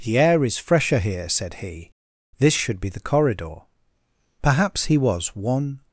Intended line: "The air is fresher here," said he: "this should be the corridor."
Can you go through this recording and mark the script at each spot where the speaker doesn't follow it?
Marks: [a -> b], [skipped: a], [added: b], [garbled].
"The air is fresher here," said he: "this should be the corridor." [added: Perhaps he was one]